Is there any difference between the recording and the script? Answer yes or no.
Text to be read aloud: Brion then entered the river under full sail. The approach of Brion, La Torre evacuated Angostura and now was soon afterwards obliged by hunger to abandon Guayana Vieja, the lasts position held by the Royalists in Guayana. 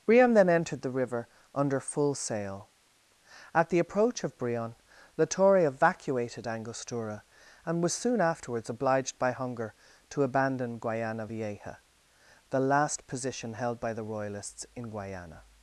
yes